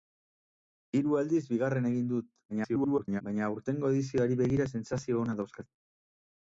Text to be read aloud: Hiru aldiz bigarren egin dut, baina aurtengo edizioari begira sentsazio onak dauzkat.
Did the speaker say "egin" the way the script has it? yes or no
yes